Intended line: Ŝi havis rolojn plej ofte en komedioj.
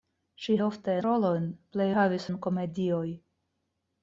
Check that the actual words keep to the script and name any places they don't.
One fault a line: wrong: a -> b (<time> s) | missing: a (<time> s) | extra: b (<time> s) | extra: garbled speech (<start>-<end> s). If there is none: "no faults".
wrong: havis -> ofte (0.7 s)
wrong: ofte -> havis (1.9 s)